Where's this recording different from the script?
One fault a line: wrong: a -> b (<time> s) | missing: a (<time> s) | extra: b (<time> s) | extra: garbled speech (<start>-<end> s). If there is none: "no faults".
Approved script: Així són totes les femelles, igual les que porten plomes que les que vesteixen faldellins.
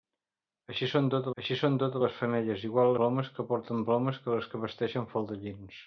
extra: així són totes (1.4 s)
wrong: les -> plomes (3.0 s)